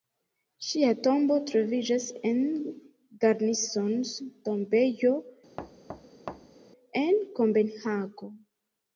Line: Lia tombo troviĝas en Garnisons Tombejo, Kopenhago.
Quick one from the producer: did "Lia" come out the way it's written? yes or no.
no